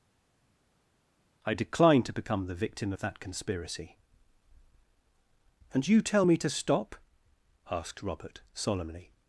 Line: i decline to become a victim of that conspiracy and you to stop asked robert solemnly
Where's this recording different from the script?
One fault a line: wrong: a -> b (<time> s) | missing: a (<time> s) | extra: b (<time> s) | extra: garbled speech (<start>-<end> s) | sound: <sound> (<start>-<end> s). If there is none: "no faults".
wrong: a -> the (2.4 s)
extra: tell me (6.0 s)